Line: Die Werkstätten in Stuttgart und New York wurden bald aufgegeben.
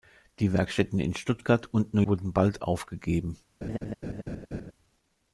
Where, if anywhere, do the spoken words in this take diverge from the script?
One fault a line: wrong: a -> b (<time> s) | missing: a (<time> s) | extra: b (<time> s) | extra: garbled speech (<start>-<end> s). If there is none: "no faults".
missing: York (2.0 s)